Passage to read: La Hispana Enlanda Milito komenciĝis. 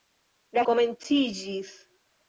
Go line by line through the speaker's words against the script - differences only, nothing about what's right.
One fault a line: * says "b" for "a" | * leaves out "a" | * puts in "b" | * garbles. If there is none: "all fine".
* leaves out "Hispana Enlanda Milito"